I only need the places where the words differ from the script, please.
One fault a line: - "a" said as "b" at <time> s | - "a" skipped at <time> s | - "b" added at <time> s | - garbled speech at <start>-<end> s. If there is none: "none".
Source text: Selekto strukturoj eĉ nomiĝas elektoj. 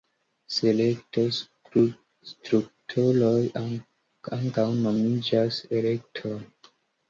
- "eĉ" said as "ankaŭ" at 4.4 s